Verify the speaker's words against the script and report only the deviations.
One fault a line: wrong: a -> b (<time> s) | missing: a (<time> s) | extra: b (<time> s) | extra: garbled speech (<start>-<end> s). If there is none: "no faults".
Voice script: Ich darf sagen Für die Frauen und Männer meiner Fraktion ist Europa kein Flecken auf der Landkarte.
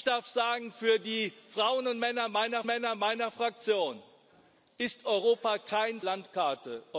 extra: Männer meiner (2.7 s)
missing: Flecken auf der (6.0 s)